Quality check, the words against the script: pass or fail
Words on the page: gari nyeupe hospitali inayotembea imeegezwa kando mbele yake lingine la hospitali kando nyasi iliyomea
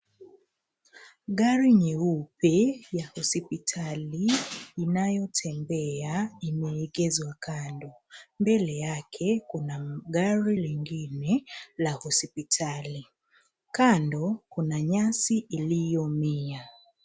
fail